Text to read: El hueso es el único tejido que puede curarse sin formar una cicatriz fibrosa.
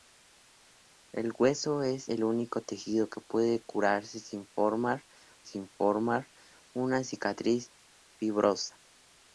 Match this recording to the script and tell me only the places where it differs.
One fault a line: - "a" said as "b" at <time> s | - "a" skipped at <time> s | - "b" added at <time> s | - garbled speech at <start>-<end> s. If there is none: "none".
- "sin formar" added at 5.4 s